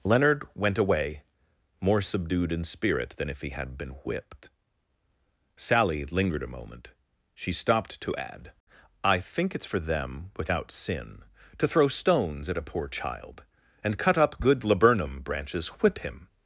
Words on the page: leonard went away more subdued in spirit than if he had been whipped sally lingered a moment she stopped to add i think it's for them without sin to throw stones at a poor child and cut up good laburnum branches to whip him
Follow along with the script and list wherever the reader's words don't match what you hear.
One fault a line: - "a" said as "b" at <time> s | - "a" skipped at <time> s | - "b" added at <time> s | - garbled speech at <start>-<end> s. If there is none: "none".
- "to" skipped at 15.7 s